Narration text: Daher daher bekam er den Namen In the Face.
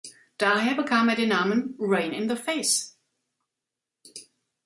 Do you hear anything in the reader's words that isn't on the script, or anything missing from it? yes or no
yes